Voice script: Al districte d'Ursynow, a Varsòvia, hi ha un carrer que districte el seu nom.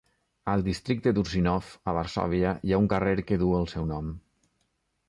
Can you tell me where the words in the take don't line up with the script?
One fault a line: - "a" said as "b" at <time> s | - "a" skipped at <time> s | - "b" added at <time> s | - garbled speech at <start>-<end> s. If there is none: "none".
- "districte" said as "duu" at 3.4 s